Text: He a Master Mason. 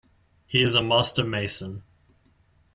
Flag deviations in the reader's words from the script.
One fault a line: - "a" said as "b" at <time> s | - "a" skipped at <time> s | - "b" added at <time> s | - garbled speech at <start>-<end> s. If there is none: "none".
- "is" added at 0.6 s